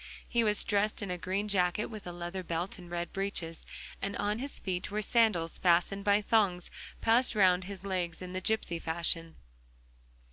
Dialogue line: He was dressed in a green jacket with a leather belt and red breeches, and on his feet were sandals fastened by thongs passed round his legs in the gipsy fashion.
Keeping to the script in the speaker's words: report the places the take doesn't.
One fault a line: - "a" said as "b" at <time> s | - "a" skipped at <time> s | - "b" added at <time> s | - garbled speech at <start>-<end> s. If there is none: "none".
none